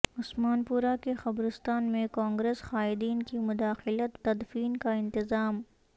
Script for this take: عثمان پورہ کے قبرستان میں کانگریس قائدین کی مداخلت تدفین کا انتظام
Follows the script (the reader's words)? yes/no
yes